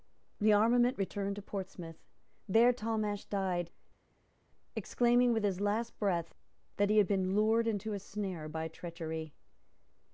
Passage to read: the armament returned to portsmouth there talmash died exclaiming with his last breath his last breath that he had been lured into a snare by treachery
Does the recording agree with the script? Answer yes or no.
no